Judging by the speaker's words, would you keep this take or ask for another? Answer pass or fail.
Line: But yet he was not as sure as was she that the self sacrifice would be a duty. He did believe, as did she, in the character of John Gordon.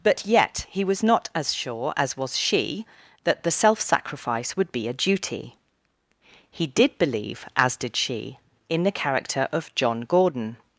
pass